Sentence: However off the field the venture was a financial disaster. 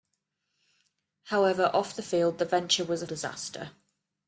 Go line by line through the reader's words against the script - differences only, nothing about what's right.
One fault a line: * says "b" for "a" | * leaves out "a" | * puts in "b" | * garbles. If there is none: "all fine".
* leaves out "financial"